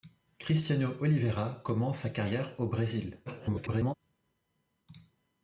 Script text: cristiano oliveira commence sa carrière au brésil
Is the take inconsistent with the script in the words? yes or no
yes